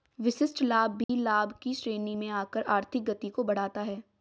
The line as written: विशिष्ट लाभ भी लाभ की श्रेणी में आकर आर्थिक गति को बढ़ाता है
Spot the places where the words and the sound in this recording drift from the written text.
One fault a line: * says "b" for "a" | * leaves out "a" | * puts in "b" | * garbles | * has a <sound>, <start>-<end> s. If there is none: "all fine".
* has a dropout, 1.0-1.1 s